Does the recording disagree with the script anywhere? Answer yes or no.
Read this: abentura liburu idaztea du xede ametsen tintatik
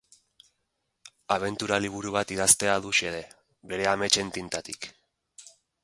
yes